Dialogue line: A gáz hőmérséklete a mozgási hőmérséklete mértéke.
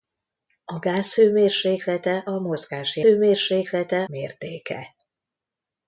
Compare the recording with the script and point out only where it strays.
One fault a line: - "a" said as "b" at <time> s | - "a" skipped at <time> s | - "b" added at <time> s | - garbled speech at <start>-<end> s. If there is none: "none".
none